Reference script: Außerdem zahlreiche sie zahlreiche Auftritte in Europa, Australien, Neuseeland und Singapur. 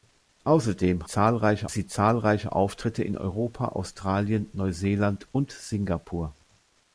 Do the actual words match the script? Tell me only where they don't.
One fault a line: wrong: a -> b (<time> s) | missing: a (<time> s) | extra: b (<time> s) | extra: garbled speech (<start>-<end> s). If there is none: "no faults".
no faults